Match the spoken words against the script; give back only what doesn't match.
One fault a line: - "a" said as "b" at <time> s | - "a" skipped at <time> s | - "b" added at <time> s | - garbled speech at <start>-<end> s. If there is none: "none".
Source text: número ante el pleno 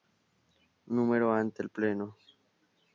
none